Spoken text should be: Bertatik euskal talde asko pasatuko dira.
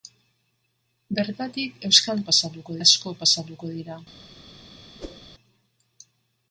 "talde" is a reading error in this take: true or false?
true